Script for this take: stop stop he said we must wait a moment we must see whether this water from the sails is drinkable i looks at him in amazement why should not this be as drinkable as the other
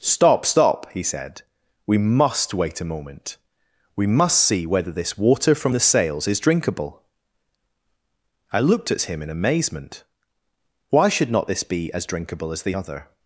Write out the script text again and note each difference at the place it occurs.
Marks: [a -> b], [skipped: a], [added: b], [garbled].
stop stop he said we must wait a moment we must see whether this water from the sails is drinkable i [looks -> looked] at him in amazement why should not this be as drinkable as the other